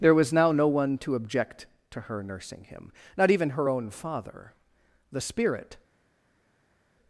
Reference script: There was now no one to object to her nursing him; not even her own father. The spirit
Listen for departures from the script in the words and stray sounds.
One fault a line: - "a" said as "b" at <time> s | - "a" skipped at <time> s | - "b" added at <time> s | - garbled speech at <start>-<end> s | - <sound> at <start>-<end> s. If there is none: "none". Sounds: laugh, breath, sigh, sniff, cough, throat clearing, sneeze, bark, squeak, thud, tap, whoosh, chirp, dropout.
none